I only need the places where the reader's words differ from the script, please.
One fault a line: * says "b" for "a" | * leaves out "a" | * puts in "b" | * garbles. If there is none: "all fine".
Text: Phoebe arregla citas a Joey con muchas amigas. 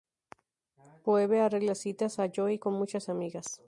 all fine